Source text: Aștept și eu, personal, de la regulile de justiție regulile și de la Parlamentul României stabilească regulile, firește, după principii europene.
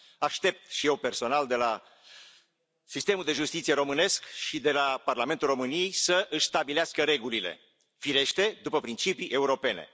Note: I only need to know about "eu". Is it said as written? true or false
true